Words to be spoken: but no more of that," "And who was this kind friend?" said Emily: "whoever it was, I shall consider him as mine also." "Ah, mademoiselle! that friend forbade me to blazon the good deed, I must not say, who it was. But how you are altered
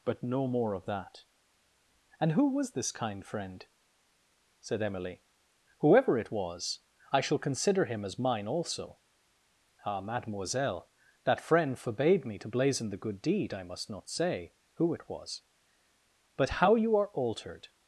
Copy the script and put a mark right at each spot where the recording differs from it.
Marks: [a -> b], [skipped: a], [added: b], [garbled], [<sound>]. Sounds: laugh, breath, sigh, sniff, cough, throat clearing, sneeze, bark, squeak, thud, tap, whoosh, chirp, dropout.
but no more of that," "And who was this kind friend?" said Emily: "whoever it was, I shall consider him as mine also." "Ah, mademoiselle! that friend forbade me to blazon the good deed, I must not say, who it was. But how you are altered